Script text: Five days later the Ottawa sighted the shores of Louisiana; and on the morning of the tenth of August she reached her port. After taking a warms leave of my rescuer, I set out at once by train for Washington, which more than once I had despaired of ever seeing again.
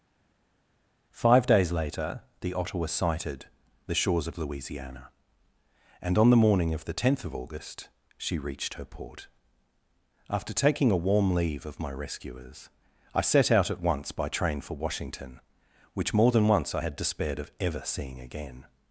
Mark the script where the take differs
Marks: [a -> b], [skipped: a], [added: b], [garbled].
Five days later the Ottawa sighted the shores of Louisiana; and on the morning of the tenth of August she reached her port. After taking a [warms -> warm] leave of my [rescuer, -> rescuers] I set out at once by train for Washington, which more than once I had despaired of ever seeing again.